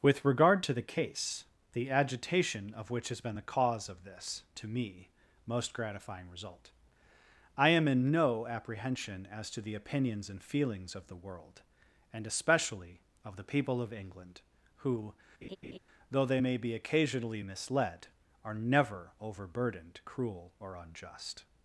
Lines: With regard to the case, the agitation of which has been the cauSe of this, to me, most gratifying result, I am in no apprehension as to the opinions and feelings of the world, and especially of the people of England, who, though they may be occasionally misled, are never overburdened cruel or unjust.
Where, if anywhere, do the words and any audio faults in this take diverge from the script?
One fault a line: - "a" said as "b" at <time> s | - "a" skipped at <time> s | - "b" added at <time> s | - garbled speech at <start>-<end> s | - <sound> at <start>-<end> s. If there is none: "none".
- laugh at 15.4-15.8 s